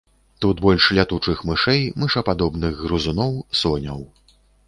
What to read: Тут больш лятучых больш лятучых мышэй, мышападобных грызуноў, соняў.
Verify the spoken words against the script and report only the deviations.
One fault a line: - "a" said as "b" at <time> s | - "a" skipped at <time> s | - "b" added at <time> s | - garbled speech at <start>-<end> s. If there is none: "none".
- "больш лятучых" skipped at 1.4 s